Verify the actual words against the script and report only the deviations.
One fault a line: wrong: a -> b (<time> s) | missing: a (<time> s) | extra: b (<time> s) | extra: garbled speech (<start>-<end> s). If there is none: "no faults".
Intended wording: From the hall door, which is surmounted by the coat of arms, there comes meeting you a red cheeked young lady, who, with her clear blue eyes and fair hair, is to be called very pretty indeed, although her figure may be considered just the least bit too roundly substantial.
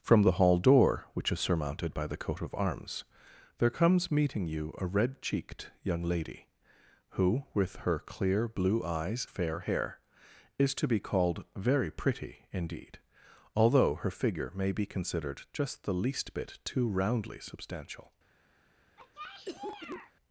missing: and (9.3 s)